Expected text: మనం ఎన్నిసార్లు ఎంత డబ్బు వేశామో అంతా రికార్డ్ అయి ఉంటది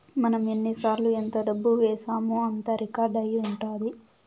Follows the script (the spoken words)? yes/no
yes